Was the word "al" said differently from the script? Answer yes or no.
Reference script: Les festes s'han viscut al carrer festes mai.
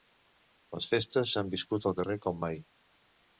no